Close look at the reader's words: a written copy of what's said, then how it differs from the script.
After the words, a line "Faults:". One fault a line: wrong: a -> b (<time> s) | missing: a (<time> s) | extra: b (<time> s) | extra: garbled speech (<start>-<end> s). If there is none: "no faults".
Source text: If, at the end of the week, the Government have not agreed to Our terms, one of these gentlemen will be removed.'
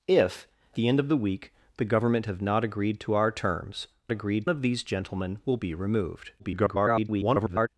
If, the end of the week, the Government have not agreed to Our terms, agreed of these gentlemen will be removed.' [garbled]
Faults:
missing: at (0.5 s)
wrong: one -> agreed (4.1 s)
extra: garbled speech (6.4-7.7 s)